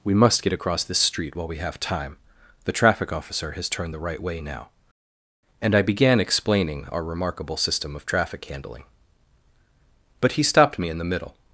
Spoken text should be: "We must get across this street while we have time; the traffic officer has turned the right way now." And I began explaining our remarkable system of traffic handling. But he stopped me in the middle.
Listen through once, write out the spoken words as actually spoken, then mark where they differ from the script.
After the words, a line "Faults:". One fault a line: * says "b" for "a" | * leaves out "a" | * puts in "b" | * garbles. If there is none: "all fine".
"We must get across this street while we have time; the traffic officer has turned the right way now." And I began explaining our remarkable system of traffic handling. But he stopped me in the middle.
Faults:
all fine